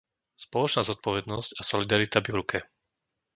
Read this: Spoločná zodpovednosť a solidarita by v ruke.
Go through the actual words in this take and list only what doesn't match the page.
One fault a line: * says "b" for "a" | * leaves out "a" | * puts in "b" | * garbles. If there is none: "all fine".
all fine